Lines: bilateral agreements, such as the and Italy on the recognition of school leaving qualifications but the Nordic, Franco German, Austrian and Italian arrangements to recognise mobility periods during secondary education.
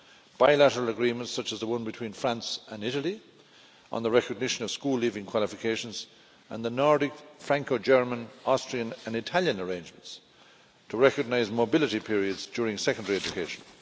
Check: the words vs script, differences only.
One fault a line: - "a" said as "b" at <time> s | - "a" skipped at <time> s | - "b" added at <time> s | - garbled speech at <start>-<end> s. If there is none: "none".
- "one between France" added at 1.7 s
- "but" said as "and" at 6.5 s